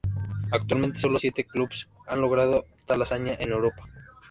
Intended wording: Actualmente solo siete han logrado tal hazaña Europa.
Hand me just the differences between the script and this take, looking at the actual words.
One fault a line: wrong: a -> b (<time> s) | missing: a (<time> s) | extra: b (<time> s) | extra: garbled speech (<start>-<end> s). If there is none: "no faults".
extra: clubes (1.4 s)
extra: en (3.4 s)